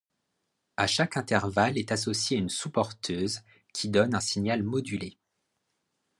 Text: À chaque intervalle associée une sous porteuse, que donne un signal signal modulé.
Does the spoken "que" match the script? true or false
false